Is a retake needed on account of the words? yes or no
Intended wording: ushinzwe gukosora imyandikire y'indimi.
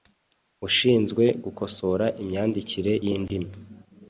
no